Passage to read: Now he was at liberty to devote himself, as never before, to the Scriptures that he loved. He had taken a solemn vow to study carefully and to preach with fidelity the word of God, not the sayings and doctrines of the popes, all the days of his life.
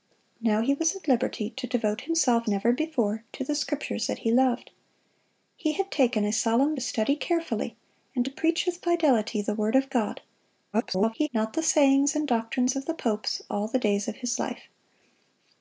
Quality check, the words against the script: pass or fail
fail